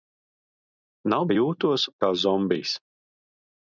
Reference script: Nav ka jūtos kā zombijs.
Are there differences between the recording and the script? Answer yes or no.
no